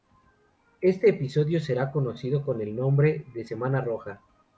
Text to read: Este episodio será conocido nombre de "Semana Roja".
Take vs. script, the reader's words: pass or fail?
fail